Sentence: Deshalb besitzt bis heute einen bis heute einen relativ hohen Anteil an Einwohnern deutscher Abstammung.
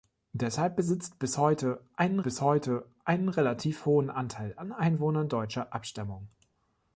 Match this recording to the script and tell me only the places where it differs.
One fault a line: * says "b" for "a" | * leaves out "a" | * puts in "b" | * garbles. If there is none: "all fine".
all fine